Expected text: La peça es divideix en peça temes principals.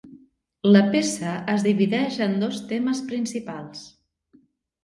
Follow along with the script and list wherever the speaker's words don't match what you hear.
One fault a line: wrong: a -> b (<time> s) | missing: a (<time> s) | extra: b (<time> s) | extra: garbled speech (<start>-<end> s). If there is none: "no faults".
wrong: peça -> dos (2.5 s)